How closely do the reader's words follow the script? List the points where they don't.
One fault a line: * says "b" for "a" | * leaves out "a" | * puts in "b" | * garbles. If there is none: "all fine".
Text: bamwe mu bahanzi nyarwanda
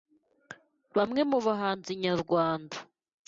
all fine